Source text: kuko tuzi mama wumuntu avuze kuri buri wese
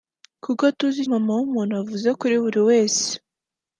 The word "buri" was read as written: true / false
true